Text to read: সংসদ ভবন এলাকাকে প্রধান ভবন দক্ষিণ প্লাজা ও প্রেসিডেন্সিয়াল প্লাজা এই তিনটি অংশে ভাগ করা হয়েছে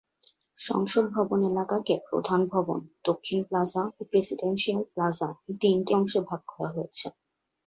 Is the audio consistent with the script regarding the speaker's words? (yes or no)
yes